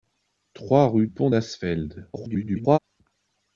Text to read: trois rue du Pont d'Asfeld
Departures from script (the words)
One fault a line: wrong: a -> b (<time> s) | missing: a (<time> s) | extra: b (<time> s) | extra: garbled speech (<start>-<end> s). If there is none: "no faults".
missing: du (1.1 s)
extra: garbled speech (2.1-2.8 s)